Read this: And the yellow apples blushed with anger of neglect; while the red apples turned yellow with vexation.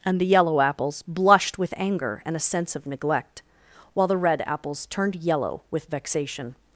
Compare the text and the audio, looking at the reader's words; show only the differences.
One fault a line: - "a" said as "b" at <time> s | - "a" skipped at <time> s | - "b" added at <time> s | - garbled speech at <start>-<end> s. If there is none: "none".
- "and a sense" added at 2.2 s